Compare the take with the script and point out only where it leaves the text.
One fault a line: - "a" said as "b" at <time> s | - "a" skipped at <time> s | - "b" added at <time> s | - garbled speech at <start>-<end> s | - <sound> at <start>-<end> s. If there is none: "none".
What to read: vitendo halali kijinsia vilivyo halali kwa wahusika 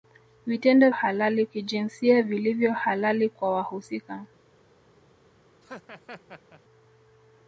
- laugh at 5.6-6.6 s